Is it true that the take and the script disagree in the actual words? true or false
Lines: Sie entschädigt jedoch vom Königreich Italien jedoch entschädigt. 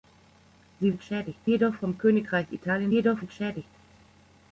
false